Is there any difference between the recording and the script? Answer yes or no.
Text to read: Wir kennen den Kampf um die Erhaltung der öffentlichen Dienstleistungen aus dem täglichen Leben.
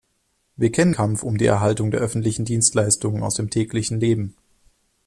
yes